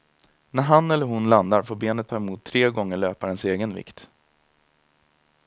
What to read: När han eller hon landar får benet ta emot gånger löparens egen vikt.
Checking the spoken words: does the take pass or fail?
fail